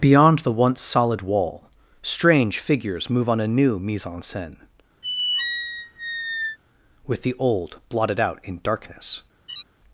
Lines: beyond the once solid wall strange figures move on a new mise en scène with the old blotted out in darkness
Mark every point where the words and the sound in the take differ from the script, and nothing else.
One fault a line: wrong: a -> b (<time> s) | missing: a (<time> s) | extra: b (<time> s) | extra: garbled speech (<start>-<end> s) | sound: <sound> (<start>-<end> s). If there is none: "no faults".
sound: squeak (5.0-6.6 s)
sound: laugh (9.5-9.6 s)